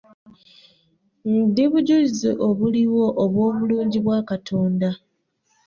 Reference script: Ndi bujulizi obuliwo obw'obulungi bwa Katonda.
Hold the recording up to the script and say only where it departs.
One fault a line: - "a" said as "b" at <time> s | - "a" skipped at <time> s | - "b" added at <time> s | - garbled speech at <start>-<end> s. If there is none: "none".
none